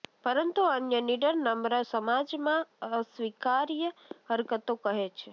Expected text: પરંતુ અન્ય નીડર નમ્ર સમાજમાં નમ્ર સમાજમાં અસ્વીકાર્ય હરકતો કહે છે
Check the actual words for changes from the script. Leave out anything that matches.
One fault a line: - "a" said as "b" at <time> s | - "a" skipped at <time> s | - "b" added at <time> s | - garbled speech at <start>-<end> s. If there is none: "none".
- "નમ્ર સમાજમાં" skipped at 2.6 s